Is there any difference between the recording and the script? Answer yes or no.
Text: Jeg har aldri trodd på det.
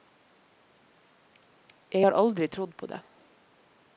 no